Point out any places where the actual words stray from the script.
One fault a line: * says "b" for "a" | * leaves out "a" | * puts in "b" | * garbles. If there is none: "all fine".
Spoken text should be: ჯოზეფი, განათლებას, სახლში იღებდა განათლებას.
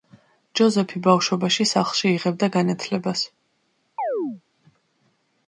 * says "ბავშვობაში" for "განათლებას"